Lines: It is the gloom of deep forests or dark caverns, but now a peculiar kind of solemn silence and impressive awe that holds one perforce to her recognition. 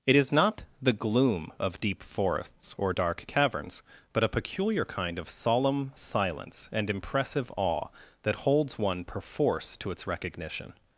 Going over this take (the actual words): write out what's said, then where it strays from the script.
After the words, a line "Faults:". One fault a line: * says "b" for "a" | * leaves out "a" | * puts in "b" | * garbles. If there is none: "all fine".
It is not the gloom of deep forests or dark caverns, but a peculiar kind of solemn silence and impressive awe that holds one perforce to its recognition.
Faults:
* puts in "not"
* leaves out "now"
* says "its" for "her"